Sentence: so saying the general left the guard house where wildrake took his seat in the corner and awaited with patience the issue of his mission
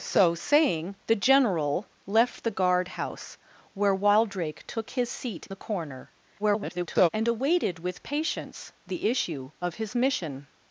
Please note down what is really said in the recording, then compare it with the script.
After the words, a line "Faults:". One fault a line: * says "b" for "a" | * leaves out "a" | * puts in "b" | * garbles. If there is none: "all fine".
so saying the general left the guard house where wildrake took his seat the corner [garbled] and awaited with patience the issue of his mission
Faults:
* leaves out "in"
* garbles